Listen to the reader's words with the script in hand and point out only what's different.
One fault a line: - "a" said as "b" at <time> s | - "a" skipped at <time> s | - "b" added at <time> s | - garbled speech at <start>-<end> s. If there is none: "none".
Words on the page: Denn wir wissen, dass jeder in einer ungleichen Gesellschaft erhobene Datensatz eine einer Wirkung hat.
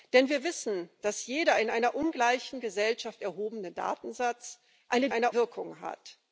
none